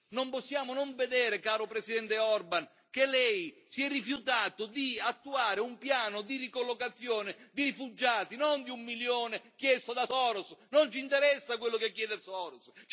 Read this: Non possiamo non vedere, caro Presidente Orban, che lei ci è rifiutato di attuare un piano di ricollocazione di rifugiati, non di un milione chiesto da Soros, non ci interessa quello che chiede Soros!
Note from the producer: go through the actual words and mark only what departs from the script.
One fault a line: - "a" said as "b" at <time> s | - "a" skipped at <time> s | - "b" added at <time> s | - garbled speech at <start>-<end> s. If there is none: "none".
- "ci" said as "si" at 3.7 s